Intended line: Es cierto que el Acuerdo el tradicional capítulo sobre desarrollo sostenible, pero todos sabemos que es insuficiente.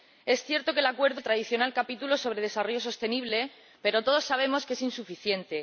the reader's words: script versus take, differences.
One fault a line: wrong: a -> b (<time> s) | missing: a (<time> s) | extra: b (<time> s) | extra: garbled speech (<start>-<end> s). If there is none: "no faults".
no faults